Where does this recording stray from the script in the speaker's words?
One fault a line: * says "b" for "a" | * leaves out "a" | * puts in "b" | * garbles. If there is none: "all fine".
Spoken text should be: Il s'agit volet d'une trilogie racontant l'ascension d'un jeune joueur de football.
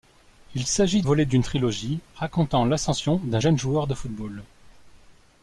all fine